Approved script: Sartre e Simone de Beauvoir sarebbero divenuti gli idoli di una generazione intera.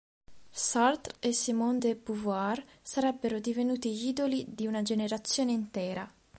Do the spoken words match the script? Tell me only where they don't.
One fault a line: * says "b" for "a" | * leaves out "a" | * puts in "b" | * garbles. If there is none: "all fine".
all fine